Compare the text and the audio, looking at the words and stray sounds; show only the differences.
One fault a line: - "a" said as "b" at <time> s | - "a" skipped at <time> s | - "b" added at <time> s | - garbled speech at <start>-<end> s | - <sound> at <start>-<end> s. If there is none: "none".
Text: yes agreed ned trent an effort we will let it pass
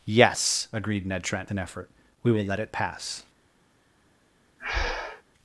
- breath at 4.6-5.2 s